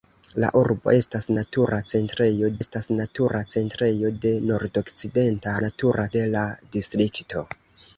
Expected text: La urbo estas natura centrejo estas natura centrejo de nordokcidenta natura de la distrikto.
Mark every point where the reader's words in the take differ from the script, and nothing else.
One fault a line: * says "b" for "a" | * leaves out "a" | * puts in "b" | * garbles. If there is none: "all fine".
all fine